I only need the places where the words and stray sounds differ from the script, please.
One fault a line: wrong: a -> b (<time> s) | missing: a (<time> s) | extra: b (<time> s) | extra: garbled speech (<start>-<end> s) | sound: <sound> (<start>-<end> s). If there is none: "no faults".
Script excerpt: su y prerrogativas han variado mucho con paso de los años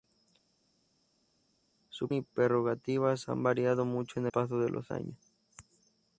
no faults